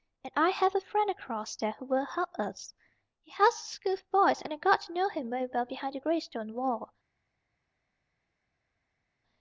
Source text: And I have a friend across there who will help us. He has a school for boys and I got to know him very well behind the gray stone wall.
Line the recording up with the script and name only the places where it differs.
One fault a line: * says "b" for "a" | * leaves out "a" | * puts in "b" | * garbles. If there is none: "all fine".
all fine